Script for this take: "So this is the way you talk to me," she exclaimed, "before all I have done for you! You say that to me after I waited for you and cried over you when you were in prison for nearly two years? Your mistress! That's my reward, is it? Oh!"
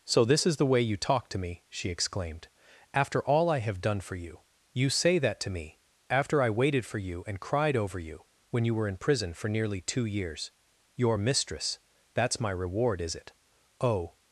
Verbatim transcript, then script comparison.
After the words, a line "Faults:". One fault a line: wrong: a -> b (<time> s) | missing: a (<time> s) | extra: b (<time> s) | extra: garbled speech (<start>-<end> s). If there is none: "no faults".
"So this is the way you talk to me," she exclaimed, "after all I have done for you! You say that to me after I waited for you and cried over you when you were in prison for nearly two years? Your mistress! That's my reward, is it? Oh!"
Faults:
wrong: before -> after (2.9 s)